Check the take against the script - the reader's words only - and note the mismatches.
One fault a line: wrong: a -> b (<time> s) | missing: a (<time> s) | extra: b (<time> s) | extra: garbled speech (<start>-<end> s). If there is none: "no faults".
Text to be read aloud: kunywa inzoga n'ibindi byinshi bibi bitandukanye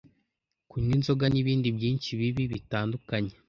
no faults